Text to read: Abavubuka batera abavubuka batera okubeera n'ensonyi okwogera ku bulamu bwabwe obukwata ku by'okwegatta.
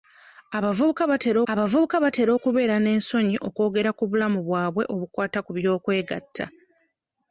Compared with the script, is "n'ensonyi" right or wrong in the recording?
right